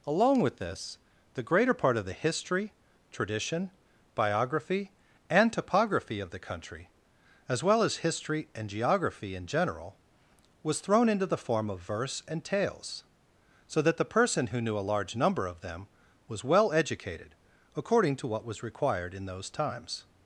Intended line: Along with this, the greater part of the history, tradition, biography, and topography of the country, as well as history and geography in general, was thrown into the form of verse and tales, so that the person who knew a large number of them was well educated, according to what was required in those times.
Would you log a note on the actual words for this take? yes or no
no